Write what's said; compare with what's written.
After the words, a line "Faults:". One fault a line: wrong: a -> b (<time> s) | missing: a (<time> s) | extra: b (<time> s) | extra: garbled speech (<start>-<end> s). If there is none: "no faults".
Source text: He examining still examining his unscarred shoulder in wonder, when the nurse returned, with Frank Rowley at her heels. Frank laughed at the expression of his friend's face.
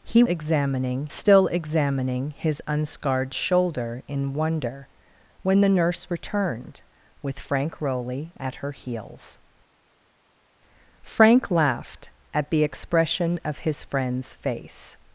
He examining still examining his unscarred shoulder in wonder, when the nurse returned, with Frank Rowley at her heels. Frank laughed at the expression of his friend's face.
Faults:
no faults